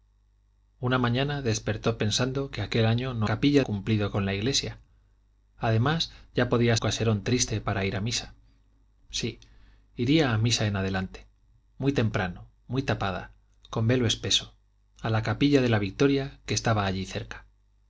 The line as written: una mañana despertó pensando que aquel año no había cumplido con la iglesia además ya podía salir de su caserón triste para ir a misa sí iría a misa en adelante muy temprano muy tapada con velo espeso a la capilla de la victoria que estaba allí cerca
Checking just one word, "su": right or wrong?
wrong